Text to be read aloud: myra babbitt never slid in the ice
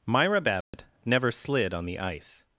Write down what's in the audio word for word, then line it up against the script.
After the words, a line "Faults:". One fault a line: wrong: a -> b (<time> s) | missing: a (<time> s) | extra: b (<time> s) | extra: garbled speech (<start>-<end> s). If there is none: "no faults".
myra babbitt never slid on the ice
Faults:
wrong: in -> on (1.7 s)